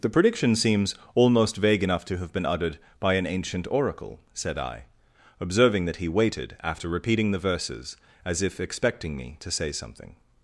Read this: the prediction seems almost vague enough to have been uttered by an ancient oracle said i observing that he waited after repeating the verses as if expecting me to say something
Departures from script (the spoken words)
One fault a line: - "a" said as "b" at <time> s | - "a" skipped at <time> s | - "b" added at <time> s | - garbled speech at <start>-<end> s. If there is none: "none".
none